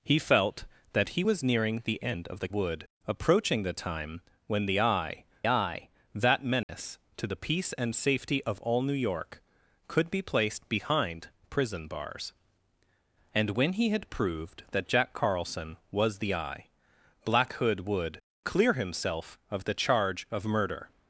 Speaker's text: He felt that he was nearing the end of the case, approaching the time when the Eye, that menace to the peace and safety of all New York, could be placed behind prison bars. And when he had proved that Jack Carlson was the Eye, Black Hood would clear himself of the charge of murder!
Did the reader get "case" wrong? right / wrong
wrong